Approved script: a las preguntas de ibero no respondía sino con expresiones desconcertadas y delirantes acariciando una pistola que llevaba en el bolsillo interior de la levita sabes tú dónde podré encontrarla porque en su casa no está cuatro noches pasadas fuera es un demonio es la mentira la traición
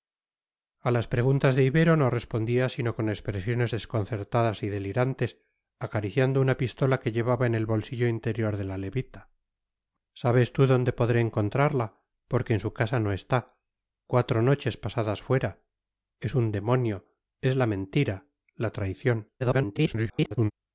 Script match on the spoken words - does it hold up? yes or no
no